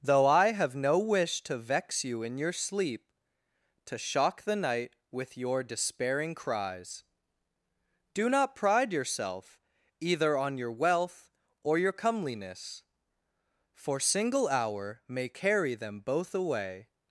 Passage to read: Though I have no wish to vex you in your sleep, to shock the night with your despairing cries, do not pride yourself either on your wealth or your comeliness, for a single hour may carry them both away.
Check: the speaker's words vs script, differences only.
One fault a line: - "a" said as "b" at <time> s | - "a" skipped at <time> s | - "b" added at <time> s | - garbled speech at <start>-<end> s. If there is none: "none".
- "a" skipped at 14.0 s